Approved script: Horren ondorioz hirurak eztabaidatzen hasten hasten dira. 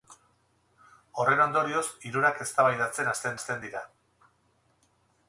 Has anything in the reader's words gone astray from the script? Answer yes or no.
no